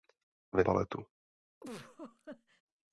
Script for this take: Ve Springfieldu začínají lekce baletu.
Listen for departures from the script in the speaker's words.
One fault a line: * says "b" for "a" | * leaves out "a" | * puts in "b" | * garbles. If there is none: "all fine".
* leaves out "Springfieldu začínají lekce"